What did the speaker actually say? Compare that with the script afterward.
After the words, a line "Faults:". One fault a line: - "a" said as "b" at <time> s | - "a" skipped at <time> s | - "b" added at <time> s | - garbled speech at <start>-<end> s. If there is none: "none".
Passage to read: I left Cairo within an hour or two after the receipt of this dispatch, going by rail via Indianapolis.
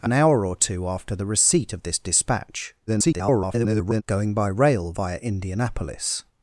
I an hour or two after the receipt of this dispatch, [garbled] going by rail via Indianapolis.
Faults:
- "left Cairo within" skipped at 0.1 s
- garbled speech at 2.9-4.0 s